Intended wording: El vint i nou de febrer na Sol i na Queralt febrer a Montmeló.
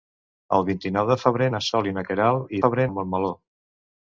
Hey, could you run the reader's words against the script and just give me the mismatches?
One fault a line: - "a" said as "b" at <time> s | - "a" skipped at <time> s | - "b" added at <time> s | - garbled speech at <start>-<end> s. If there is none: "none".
none